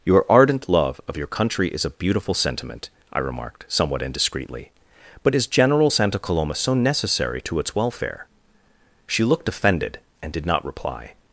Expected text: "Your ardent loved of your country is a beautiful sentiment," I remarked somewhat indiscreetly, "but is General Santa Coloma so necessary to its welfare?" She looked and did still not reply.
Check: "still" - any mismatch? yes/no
yes